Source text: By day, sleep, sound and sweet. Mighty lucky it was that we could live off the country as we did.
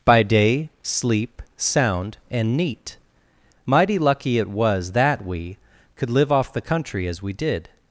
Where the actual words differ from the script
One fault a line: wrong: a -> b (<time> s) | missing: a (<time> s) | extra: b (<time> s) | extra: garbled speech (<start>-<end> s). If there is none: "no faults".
wrong: sweet -> neat (2.6 s)